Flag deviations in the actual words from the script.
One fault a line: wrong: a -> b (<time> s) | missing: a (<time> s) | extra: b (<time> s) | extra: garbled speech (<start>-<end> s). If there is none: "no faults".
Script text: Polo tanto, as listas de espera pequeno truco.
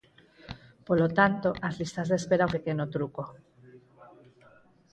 no faults